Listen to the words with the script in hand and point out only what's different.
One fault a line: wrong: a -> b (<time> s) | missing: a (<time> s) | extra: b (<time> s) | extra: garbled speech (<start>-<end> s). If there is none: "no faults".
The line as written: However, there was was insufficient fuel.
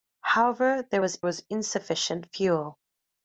no faults